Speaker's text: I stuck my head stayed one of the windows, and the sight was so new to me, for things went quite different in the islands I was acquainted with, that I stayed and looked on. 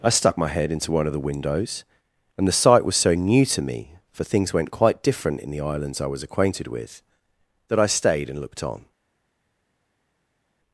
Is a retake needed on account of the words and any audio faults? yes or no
yes